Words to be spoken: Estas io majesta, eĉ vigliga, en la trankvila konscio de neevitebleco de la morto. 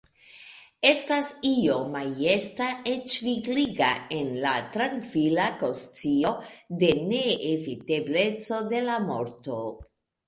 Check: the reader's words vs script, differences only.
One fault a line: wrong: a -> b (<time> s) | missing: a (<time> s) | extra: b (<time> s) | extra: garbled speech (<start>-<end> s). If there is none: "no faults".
no faults